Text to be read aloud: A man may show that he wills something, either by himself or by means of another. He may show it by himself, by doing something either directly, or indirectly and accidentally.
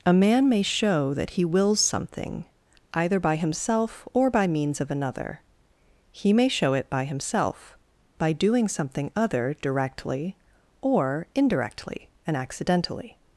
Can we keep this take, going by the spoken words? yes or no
no